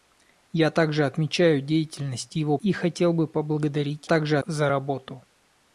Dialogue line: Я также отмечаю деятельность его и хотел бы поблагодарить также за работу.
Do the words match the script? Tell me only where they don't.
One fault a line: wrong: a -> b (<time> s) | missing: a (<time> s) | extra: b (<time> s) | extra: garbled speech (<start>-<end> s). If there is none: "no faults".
no faults